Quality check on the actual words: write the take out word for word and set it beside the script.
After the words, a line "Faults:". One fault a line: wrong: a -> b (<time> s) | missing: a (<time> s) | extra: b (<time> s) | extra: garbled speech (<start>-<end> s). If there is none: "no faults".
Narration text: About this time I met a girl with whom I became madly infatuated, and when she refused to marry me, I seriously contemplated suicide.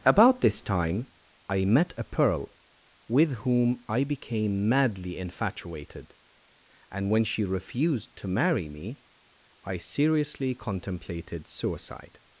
About this time I met a pearl with whom I became madly infatuated, and when she refused to marry me, I seriously contemplated suicide.
Faults:
wrong: girl -> pearl (2.0 s)